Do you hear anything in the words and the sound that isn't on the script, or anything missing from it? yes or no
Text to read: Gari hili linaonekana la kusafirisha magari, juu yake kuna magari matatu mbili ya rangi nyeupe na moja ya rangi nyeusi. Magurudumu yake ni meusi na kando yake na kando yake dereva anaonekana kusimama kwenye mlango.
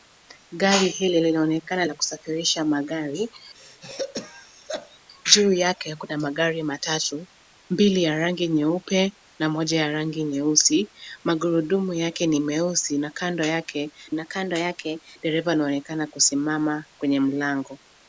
yes